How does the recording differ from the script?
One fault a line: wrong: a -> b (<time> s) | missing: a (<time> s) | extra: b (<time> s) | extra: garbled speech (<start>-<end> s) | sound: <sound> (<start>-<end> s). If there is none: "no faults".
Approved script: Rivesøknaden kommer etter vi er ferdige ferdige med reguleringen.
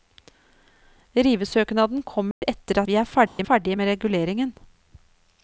sound: dropout (2.3-2.4 s)
sound: dropout (3.3-3.4 s)